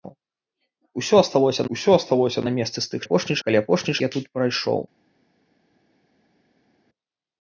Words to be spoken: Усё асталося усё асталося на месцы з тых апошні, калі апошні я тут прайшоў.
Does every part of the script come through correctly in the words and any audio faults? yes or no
yes